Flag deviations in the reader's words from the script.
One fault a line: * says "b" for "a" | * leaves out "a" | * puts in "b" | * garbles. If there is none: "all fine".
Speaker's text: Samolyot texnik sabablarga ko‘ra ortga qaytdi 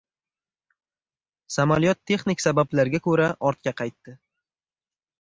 all fine